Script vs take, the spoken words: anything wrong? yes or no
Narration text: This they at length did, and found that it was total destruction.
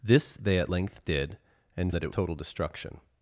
yes